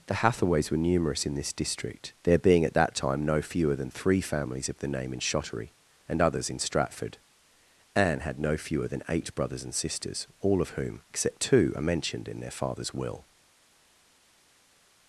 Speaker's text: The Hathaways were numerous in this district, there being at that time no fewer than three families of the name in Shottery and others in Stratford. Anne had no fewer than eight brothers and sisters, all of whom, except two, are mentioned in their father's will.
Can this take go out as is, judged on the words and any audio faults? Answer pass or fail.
pass